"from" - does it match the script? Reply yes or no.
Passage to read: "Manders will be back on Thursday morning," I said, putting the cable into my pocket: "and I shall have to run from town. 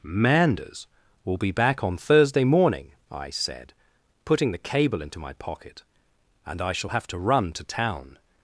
no